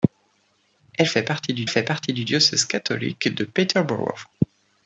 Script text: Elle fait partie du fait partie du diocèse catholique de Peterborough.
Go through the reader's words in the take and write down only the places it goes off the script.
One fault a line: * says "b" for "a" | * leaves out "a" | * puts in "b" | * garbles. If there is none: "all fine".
all fine